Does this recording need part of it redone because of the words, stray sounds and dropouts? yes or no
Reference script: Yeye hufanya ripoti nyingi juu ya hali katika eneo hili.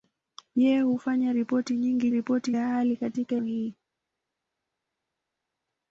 yes